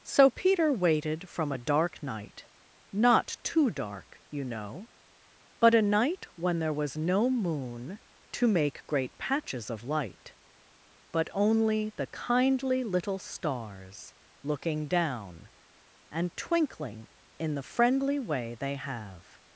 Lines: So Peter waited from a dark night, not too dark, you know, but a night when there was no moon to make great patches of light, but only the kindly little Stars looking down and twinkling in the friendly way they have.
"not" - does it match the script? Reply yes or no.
yes